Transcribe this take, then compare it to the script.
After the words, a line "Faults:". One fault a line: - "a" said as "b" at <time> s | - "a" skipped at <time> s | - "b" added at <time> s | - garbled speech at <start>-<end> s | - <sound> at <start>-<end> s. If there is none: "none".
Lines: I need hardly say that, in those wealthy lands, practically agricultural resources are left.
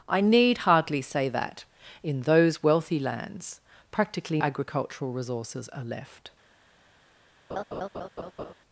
I need hardly say that, in those wealthy lands, practically agricultural resources are left.
Faults:
- laugh at 7.5-8.5 s